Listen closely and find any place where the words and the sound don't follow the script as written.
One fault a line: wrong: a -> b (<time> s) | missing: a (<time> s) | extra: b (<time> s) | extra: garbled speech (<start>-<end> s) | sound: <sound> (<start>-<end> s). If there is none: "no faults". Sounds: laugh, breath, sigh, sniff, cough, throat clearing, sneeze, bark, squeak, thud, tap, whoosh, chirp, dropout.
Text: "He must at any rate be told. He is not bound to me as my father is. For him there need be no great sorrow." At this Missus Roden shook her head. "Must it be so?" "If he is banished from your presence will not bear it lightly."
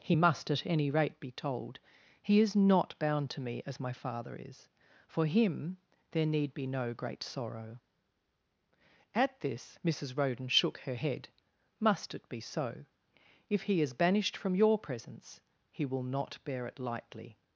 extra: he (15.7 s)